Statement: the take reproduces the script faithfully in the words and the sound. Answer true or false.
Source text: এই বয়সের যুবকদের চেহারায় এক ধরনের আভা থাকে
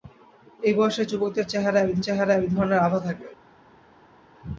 false